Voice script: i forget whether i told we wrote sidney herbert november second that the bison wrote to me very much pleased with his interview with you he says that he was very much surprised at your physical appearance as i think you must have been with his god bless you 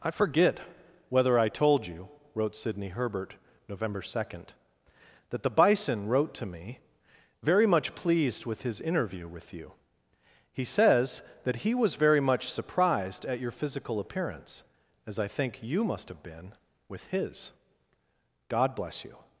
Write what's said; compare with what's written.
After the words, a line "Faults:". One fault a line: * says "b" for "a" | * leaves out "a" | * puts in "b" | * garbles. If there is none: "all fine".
i forget whether i told you wrote sidney herbert november second that the bison wrote to me very much pleased with his interview with you he says that he was very much surprised at your physical appearance as i think you must have been with his god bless you
Faults:
* says "you" for "we"